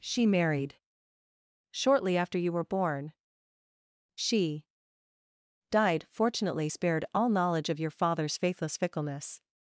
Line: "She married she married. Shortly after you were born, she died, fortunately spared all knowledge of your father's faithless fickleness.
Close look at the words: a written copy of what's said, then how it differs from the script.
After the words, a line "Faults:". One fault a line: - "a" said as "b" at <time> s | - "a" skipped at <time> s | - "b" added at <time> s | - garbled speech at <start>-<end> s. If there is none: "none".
"She married. Shortly after you were born, she died, fortunately spared all knowledge of your father's faithless fickleness.
Faults:
- "she married" skipped at 0.8 s